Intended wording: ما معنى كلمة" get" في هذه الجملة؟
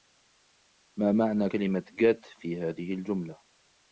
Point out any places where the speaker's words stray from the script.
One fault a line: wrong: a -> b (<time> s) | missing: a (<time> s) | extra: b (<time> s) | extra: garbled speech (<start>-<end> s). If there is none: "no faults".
no faults